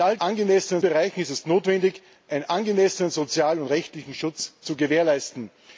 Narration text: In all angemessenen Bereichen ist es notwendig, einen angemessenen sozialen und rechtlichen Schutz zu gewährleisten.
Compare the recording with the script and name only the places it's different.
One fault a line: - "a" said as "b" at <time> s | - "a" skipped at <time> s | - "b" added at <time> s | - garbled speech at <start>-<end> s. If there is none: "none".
none